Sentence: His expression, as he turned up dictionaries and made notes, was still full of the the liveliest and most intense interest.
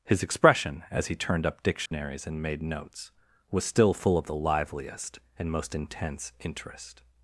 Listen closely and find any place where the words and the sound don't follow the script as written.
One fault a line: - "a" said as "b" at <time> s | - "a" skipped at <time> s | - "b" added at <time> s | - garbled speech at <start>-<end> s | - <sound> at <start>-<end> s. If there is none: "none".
- dropout at 1.9-1.9 s
- "the" skipped at 4.4 s